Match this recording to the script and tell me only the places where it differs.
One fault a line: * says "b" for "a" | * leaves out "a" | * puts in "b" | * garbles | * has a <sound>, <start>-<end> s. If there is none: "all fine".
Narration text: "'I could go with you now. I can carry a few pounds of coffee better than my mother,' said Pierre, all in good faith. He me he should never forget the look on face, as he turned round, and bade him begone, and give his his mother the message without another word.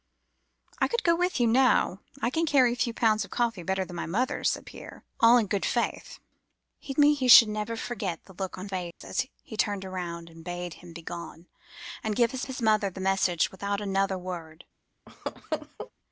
* has a dropout, 8.9-9.0 s
* has a laugh, 15.1-15.9 s